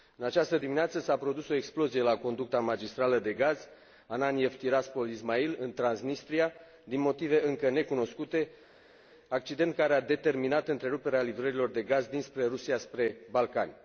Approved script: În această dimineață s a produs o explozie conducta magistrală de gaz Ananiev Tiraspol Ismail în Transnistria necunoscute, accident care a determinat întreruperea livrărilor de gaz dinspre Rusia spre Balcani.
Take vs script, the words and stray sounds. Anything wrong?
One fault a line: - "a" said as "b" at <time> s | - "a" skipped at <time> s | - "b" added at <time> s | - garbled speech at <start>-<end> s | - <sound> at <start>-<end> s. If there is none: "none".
- "la" added at 2.0 s
- "din motive încă" added at 6.8 s